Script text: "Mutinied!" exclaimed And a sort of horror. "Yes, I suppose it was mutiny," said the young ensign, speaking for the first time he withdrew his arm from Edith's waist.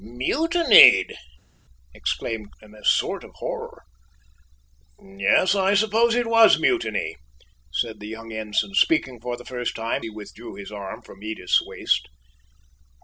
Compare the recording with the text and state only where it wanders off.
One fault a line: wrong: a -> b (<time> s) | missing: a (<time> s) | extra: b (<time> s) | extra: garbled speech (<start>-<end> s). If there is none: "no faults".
no faults